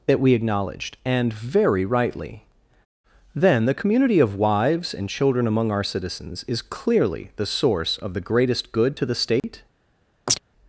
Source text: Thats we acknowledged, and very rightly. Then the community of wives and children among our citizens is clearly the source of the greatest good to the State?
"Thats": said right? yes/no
no